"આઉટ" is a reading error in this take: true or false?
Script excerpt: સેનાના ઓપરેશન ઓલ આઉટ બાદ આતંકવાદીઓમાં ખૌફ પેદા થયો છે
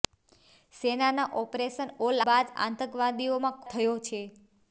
true